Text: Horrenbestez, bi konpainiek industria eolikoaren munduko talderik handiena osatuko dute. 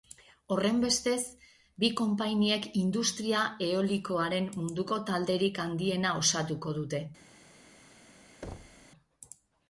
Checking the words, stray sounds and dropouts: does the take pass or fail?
fail